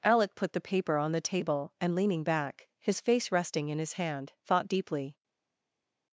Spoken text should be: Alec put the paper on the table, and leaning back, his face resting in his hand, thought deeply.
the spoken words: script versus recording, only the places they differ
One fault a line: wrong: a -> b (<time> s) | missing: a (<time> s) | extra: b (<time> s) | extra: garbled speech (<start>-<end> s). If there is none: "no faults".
no faults